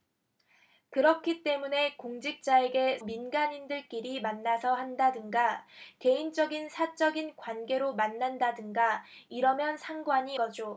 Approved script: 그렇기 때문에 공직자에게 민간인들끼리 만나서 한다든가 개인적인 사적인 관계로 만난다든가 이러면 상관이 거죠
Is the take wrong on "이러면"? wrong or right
right